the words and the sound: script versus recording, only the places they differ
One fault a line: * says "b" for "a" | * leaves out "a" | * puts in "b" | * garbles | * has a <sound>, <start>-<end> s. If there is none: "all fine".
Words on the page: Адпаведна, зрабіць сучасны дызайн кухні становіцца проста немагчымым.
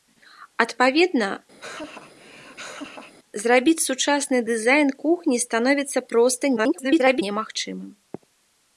* has a laugh, 1.6-3.1 s
* garbles